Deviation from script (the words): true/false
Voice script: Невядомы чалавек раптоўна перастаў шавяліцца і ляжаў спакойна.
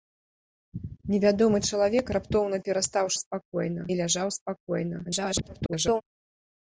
true